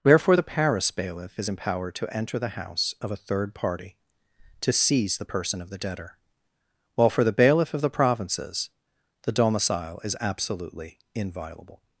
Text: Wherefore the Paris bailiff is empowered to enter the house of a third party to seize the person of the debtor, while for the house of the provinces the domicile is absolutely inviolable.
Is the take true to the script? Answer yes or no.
no